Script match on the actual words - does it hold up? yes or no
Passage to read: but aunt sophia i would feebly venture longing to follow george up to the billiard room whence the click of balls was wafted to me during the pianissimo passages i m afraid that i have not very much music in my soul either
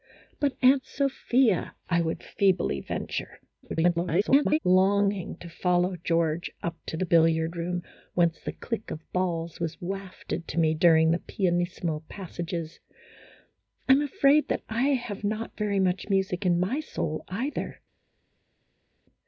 no